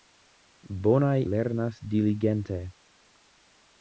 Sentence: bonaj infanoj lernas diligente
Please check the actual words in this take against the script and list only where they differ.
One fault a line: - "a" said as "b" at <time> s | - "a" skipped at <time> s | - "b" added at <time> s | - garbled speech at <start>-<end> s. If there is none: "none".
- "infanoj" skipped at 1.2 s